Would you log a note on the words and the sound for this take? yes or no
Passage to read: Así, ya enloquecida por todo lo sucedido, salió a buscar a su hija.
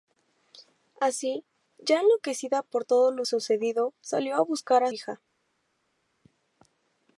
yes